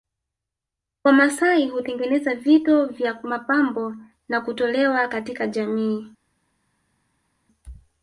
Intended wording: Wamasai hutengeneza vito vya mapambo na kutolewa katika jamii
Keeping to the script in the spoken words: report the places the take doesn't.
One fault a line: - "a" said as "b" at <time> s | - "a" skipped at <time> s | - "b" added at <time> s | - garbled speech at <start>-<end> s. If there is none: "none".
none